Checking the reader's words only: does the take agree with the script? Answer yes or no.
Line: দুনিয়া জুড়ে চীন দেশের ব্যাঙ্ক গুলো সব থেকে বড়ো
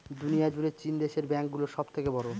yes